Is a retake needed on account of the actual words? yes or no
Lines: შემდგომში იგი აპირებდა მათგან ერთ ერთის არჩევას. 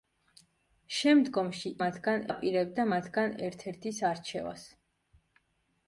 yes